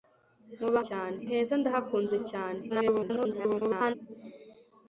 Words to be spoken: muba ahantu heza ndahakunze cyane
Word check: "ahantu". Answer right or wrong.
wrong